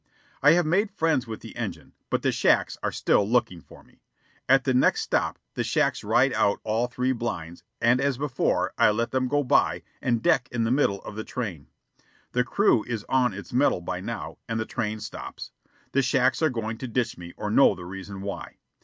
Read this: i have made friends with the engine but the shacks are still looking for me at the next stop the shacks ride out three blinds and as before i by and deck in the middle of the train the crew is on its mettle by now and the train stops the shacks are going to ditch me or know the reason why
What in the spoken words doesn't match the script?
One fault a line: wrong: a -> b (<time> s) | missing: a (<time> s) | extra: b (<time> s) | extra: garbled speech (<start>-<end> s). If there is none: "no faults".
extra: all (6.6 s)
extra: let them go (8.9 s)